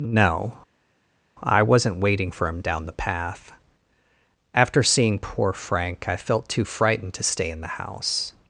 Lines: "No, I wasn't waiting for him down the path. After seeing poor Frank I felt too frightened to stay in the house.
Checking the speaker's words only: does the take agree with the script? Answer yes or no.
yes